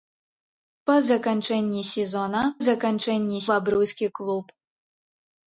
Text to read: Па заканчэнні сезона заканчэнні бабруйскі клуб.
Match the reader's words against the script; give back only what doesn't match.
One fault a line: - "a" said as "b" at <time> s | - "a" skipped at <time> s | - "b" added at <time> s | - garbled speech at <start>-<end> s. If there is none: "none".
none